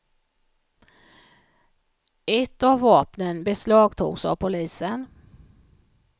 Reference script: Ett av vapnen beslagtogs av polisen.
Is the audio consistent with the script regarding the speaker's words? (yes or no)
yes